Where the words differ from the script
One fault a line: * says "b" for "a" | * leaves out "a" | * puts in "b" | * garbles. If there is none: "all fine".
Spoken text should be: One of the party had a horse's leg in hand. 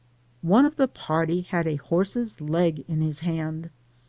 * puts in "his"